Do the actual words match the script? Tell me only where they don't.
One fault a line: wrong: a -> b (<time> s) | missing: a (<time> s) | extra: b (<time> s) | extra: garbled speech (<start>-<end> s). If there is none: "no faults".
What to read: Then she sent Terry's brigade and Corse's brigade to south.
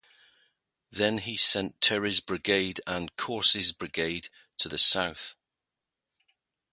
wrong: she -> he (1.2 s)
extra: the (4.6 s)